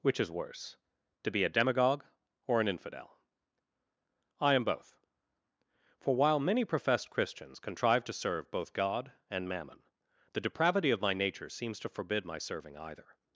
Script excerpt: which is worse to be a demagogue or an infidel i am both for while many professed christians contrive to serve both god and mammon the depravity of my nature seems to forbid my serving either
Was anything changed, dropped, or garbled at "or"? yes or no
no